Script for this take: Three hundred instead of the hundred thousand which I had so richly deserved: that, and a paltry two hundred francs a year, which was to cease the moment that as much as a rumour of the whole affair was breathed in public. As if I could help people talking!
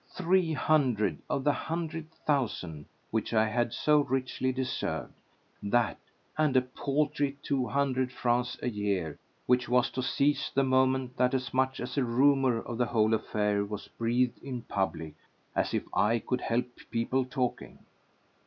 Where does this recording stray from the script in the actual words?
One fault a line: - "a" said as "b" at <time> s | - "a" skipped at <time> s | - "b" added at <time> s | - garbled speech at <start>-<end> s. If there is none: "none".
- "instead" skipped at 1.2 s